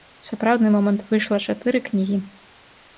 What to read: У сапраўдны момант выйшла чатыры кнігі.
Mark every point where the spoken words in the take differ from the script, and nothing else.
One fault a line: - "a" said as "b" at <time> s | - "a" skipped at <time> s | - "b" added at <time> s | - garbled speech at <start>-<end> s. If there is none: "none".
none